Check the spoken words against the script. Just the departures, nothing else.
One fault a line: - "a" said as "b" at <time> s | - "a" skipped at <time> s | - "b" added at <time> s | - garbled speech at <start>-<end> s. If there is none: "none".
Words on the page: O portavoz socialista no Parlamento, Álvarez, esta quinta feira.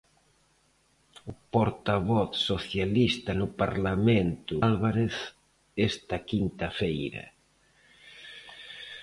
none